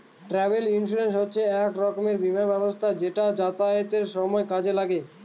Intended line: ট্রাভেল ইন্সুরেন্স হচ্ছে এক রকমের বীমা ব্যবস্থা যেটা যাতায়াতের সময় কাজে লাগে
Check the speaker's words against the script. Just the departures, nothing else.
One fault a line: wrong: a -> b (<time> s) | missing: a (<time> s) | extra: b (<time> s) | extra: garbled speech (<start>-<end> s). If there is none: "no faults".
no faults